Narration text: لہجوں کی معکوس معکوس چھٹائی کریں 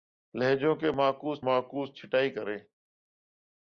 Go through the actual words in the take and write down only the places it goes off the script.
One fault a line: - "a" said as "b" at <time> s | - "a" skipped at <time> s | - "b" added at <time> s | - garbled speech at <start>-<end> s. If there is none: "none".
none